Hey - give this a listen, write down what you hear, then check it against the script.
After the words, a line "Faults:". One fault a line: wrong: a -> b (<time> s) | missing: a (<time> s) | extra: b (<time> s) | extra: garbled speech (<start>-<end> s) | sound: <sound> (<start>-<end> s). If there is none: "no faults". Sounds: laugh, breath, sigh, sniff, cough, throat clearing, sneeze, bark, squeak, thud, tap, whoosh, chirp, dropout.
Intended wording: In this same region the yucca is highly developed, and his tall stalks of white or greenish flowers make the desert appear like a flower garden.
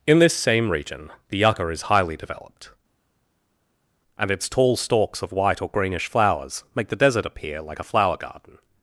In this same region the yucca is highly developed, and its tall stalks of white or greenish flowers make the desert appear like a flower garden.
Faults:
wrong: his -> its (4.3 s)